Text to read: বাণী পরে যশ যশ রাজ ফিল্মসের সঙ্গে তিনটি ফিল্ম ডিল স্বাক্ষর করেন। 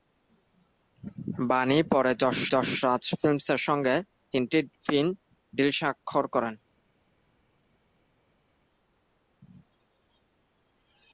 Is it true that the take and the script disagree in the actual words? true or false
false